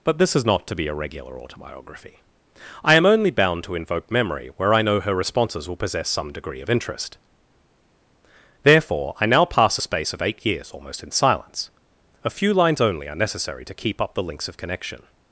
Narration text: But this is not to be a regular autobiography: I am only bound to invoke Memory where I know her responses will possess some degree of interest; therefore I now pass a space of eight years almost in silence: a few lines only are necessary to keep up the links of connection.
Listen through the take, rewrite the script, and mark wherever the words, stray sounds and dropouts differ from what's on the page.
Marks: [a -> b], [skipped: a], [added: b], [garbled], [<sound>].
But this is not to be a regular autobiography: I am only bound to invoke Memory where I know her responses will possess some degree of interest; therefore I now pass a space of eight years almost in silence: a few lines only are necessary to keep up the links of connection.